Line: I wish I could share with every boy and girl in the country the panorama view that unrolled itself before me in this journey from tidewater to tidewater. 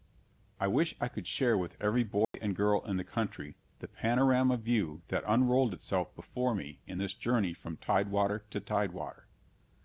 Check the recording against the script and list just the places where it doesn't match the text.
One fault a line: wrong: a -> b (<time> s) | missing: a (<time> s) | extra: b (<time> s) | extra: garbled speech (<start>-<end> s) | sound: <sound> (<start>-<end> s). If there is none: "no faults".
sound: dropout (2.2-2.3 s)